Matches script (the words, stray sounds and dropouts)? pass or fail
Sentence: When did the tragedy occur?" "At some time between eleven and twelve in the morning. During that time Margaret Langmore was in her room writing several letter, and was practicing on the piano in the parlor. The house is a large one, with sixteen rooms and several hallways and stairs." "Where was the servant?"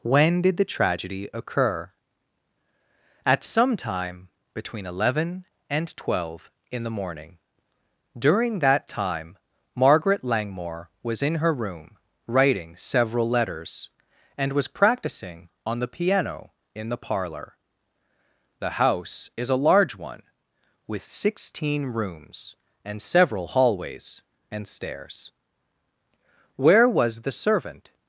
fail